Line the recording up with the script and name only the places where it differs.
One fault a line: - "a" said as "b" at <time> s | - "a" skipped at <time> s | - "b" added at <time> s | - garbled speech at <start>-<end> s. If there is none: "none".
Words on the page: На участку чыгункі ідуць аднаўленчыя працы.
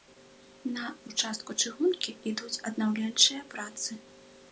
none